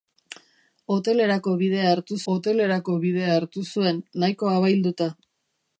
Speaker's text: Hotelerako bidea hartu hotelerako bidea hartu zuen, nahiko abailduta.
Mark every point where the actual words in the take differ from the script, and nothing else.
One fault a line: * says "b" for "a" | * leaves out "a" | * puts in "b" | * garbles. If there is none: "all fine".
all fine